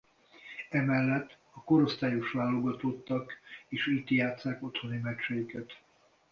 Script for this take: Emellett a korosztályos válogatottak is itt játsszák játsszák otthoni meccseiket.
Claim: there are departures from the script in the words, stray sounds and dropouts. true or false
true